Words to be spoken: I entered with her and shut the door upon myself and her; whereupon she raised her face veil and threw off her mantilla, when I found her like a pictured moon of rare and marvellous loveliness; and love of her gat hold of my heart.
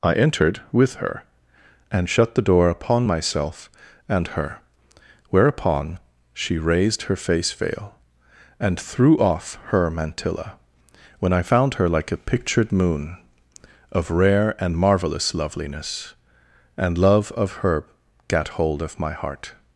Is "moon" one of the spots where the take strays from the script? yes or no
no